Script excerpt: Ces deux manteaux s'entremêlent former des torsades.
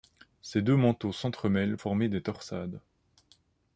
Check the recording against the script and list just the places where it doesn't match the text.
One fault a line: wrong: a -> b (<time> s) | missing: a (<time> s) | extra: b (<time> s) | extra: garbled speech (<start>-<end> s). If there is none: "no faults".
no faults